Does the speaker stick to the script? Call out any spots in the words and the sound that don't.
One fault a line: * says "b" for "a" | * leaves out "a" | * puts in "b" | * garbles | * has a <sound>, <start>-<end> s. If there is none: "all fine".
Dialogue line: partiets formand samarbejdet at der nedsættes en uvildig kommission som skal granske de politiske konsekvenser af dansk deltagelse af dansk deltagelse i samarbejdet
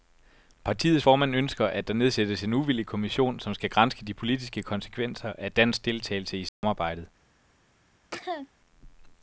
* says "ønsker" for "samarbejdet"
* leaves out "af dansk deltagelse"
* has a dropout, 6.5-6.6 s
* has a cough, 8.1-8.5 s